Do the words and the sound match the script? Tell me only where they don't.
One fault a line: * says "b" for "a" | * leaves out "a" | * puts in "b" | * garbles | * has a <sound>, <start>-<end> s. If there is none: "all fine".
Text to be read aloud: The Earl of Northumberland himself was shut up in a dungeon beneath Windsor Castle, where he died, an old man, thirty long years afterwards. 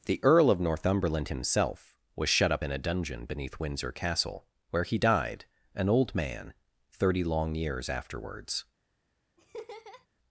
* has a laugh, 9.4-10.1 s